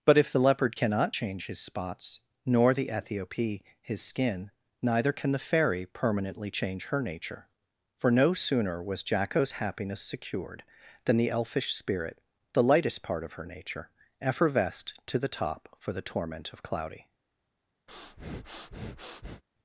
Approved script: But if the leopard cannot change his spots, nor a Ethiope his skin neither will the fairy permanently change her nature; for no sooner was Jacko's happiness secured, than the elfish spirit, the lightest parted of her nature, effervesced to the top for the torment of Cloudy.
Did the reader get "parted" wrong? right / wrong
wrong